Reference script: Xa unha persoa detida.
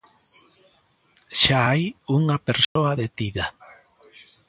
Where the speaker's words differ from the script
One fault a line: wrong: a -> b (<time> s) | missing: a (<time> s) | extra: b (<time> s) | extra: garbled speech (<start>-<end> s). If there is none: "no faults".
extra: hai (1.7 s)